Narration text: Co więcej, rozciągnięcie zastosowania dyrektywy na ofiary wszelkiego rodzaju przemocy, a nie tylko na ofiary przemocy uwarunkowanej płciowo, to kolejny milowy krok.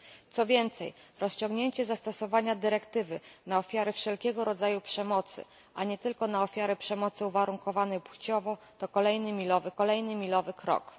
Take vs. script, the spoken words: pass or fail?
fail